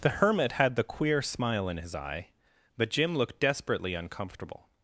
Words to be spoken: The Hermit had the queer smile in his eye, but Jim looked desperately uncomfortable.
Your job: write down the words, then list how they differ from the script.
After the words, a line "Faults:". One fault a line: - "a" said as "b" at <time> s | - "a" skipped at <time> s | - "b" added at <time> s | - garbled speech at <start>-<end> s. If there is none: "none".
The Hermit had the queer smile in his eye, but Jim looked desperately uncomfortable.
Faults:
none